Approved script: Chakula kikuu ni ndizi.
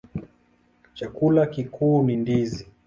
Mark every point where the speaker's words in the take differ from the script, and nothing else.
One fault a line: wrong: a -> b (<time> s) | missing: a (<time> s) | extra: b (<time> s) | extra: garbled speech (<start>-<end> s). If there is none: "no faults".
no faults